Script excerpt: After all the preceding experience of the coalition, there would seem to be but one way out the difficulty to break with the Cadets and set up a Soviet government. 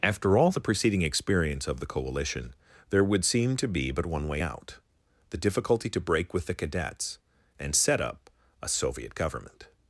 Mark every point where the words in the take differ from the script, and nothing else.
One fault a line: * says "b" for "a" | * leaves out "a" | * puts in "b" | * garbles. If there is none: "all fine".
all fine